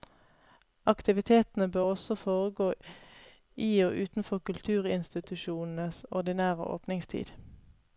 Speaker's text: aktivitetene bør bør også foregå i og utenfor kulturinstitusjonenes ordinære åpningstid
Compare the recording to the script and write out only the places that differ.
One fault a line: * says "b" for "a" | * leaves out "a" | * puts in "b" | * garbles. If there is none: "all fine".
* leaves out "bør"